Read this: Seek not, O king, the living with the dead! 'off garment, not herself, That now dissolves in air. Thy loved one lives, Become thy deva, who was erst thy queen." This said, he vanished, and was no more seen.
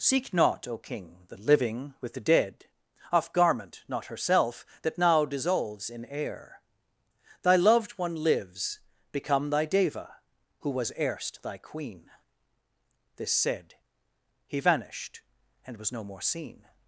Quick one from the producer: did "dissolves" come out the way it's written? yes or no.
yes